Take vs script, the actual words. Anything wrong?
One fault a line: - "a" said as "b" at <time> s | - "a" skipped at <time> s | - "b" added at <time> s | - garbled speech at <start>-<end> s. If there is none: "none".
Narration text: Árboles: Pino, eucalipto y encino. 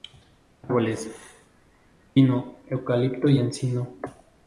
none